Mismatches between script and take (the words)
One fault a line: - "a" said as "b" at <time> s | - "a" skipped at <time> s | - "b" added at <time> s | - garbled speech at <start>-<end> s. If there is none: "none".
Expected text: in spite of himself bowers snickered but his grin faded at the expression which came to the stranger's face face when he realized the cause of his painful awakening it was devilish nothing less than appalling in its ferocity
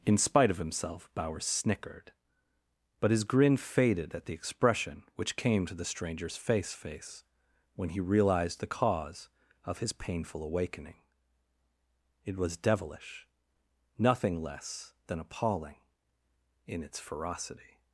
none